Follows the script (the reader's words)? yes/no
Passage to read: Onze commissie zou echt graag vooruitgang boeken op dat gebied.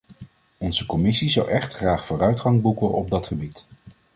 yes